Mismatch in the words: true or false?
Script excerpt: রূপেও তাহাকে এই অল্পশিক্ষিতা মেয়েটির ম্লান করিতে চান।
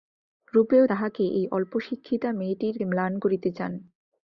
false